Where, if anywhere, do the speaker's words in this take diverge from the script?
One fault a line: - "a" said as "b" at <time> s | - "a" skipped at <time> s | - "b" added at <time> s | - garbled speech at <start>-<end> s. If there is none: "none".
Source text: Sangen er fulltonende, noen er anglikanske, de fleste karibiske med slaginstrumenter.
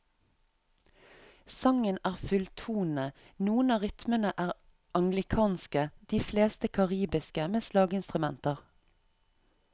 - "av rytmene" added at 3.8 s